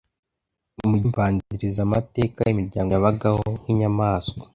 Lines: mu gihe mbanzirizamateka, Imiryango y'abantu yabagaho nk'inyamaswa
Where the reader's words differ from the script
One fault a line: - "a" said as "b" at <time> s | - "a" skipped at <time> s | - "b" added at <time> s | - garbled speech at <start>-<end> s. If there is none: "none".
- "gihe" skipped at 1.0 s
- "y'abantu" skipped at 2.9 s